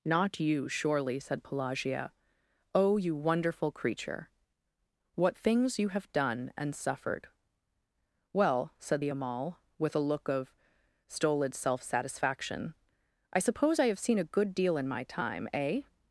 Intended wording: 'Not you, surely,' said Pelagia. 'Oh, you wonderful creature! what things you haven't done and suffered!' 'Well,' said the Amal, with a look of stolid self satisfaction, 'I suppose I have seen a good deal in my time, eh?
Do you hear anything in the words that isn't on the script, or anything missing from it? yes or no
yes